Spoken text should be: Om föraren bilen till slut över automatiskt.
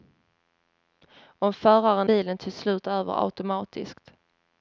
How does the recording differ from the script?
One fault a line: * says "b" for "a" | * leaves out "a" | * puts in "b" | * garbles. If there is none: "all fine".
all fine